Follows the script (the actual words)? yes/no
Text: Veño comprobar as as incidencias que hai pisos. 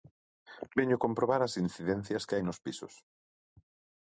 no